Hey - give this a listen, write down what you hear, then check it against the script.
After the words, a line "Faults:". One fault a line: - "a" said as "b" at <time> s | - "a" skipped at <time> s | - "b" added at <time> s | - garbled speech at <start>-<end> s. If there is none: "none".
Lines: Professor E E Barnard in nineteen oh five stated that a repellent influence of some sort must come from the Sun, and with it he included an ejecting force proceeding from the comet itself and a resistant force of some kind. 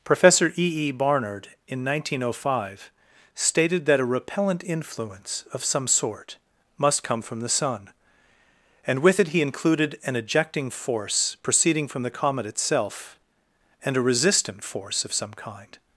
Professor E E Barnard in nineteen oh five stated that a repellent influence of some sort must come from the Sun, and with it he included an ejecting force proceeding from the comet itself and a resistant force of some kind.
Faults:
none